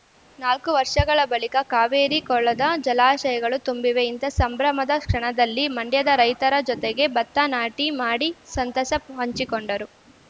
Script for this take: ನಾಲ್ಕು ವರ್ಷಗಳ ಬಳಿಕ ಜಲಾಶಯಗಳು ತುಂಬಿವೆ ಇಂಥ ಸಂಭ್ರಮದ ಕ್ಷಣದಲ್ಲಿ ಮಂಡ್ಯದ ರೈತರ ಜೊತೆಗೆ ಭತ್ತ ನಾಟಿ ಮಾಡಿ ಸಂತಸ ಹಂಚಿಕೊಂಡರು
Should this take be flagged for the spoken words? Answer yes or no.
yes